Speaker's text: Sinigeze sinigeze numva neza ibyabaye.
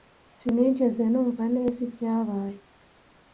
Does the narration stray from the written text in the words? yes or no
yes